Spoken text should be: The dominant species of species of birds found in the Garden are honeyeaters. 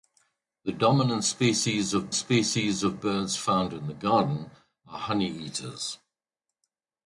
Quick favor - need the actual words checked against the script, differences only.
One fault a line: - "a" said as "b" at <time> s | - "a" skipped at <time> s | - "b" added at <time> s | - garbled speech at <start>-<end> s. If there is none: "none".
none